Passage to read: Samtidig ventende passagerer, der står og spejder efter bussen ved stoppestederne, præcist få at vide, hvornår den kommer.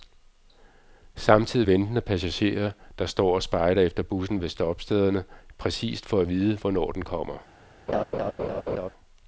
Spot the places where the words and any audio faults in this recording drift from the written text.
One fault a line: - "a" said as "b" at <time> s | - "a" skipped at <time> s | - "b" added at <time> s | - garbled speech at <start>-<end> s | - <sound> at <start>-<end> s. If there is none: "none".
- laugh at 7.9-8.9 s